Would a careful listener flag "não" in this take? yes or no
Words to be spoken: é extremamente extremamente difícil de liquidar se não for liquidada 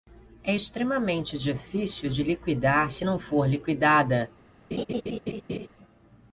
no